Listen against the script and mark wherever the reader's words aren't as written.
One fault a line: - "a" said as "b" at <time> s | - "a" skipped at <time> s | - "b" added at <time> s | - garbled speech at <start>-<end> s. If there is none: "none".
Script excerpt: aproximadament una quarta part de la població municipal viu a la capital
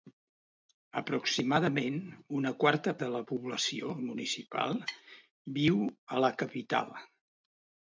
- "part" skipped at 2.9 s